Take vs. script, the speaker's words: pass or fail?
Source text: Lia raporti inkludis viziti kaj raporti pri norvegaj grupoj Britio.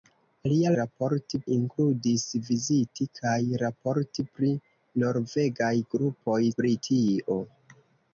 pass